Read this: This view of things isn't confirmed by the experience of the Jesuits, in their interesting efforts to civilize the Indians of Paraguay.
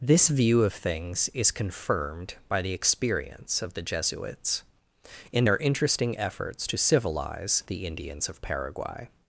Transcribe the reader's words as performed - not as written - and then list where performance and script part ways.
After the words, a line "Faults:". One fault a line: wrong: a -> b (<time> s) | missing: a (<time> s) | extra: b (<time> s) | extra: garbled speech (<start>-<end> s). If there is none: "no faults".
This view of things is confirmed by the experience of the Jesuits, in their interesting efforts to civilize the Indians of Paraguay.
Faults:
wrong: isn't -> is (1.3 s)